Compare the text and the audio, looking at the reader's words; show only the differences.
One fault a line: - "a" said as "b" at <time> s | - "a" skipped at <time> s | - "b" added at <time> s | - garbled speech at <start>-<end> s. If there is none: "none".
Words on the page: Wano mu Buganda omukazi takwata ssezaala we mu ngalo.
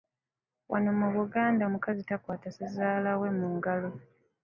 none